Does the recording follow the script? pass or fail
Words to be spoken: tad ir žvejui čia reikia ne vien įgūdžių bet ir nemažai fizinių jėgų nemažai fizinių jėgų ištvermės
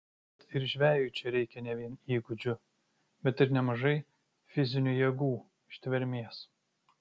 fail